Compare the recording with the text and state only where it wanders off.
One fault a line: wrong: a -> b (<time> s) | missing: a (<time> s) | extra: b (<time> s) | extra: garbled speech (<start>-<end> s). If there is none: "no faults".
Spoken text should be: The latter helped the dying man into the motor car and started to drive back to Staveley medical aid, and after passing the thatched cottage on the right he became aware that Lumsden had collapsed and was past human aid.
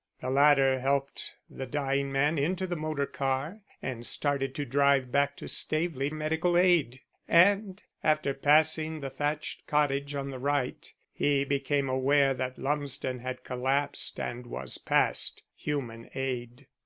no faults